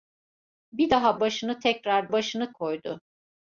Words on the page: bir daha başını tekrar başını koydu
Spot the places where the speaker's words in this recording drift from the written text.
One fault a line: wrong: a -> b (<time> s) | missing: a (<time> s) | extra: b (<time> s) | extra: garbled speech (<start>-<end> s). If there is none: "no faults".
no faults